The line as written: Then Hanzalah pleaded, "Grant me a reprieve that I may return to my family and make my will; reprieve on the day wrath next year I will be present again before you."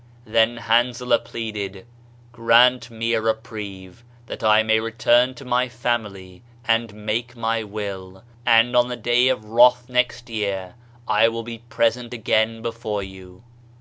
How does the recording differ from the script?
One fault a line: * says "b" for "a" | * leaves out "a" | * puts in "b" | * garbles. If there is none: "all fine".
* says "and" for "reprieve"
* puts in "of"